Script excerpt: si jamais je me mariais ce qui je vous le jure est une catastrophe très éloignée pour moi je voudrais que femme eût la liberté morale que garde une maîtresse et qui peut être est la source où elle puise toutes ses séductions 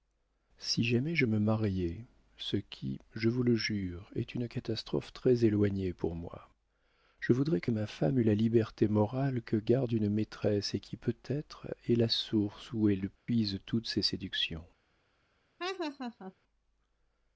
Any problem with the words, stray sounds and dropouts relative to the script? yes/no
yes